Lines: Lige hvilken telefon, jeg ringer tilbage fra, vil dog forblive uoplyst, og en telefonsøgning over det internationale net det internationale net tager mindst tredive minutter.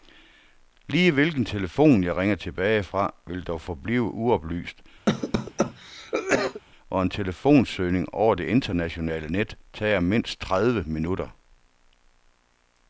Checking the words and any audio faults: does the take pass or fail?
fail